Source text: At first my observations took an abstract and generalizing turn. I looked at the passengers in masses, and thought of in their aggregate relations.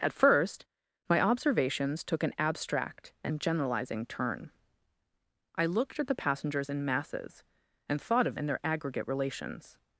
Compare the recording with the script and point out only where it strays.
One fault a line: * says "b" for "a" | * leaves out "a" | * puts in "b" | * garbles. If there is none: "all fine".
all fine